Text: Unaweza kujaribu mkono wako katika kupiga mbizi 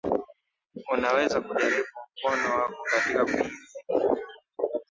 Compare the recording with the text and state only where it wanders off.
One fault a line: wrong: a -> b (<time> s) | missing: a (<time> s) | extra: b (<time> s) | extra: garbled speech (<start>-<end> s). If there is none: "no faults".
missing: kupiga (3.2 s)